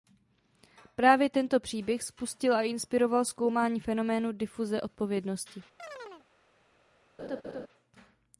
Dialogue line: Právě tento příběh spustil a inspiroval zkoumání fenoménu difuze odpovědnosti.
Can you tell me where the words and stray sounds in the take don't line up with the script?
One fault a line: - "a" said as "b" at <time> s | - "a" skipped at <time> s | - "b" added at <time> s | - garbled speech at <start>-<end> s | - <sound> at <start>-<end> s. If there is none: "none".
- chirp at 5.8-6.3 s
- laugh at 7.2-7.7 s